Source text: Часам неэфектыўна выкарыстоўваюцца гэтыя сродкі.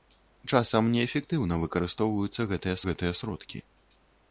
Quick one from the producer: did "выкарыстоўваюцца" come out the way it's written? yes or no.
yes